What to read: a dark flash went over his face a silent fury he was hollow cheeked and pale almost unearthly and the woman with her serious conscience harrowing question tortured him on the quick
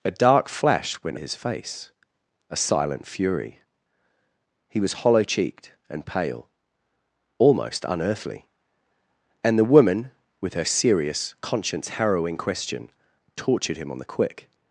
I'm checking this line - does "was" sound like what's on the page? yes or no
yes